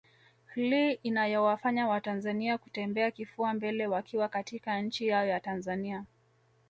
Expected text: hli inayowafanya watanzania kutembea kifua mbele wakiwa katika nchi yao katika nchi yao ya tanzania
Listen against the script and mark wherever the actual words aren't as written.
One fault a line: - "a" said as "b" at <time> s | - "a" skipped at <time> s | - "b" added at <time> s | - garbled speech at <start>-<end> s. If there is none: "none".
- "katika nchi yao" skipped at 5.2 s